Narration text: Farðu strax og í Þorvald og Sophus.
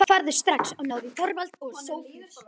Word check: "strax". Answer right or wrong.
right